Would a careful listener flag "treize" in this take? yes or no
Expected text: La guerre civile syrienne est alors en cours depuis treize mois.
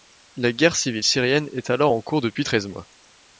no